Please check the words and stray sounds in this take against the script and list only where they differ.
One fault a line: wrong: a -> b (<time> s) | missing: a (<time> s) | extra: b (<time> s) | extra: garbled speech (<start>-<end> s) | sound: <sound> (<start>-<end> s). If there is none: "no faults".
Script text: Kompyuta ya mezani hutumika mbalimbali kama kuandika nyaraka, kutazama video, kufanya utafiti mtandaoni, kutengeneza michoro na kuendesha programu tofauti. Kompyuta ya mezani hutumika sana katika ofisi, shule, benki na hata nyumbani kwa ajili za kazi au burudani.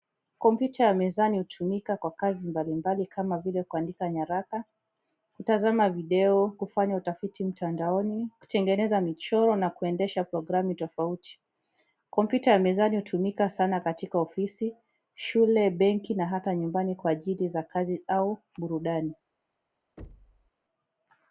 extra: kwa kazi (2.0 s)
extra: vile (3.4 s)
sound: thud (20.0-20.5 s)